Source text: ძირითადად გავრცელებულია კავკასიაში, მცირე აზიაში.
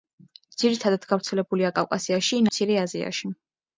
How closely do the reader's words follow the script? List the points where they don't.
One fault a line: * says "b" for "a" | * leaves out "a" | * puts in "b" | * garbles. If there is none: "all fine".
all fine